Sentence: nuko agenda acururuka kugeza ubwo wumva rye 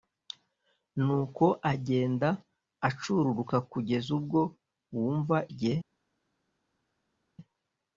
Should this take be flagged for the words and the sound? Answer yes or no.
no